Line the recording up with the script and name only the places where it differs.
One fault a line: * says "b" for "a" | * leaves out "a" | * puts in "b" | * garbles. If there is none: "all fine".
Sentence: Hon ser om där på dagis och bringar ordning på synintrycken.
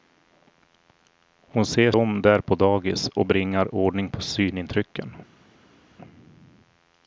all fine